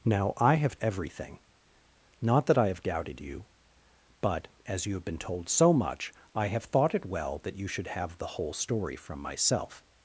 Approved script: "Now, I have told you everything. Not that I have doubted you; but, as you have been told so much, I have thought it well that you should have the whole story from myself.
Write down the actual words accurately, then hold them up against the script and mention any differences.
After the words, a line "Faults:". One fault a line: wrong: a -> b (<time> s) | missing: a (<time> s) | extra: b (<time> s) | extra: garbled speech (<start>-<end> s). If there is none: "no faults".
"Now, I have everything. Not that I have doubted you; but, as you have been told so much, I have thought it well that you should have the whole story from myself.
Faults:
missing: told you (0.8 s)